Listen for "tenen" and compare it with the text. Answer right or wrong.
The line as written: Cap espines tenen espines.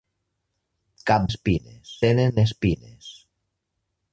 right